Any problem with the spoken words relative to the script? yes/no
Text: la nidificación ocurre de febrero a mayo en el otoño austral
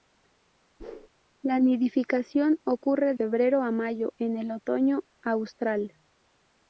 yes